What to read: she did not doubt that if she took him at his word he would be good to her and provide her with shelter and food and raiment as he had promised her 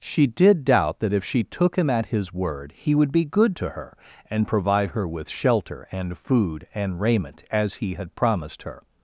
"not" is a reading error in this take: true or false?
true